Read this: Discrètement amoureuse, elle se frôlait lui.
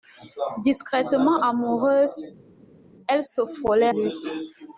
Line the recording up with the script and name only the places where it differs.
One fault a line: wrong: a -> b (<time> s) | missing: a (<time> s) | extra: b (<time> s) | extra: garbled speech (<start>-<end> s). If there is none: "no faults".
no faults